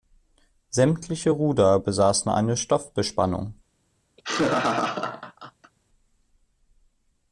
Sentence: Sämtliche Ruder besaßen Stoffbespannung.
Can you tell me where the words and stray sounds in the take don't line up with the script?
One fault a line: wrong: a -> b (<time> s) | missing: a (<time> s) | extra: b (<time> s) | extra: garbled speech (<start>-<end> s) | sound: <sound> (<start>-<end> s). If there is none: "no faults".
extra: eine (2.3 s)
sound: laugh (4.2-5.7 s)